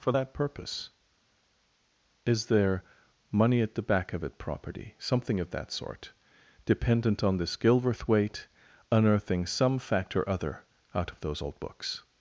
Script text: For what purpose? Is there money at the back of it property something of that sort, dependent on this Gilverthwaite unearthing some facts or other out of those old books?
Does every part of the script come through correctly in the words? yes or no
no